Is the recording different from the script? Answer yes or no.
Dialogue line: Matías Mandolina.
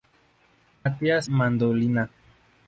no